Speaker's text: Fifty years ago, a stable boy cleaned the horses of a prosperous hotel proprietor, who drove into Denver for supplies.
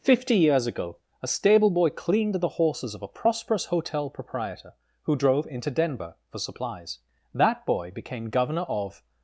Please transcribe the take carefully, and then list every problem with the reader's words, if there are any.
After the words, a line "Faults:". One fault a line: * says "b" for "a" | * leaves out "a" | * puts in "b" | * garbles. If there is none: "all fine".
Fifty years ago, a stable boy cleaned the horses of a prosperous hotel proprietor, who drove into Denver for supplies. That boy became Governor of
Faults:
* puts in "That boy became Governor of"